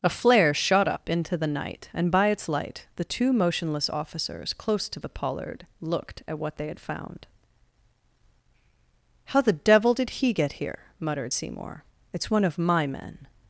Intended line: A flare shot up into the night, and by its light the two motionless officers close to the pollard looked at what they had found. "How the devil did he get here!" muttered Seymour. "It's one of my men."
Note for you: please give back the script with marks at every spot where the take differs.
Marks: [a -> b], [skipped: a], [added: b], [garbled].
A flare shot up into the night, and by its light the two motionless officers close to the pollard looked at what they had found. "How the devil did he get here!" muttered Seymour. "It's one of my men."